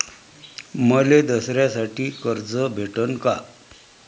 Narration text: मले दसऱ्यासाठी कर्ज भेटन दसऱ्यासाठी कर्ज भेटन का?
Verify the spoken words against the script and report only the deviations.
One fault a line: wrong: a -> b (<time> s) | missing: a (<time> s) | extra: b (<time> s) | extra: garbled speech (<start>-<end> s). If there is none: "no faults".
missing: दसऱ्यासाठी कर्ज भेटन (3.1 s)